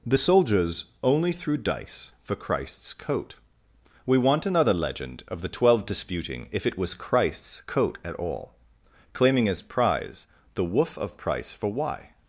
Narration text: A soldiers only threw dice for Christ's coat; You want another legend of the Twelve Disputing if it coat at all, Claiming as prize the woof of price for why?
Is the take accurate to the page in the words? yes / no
no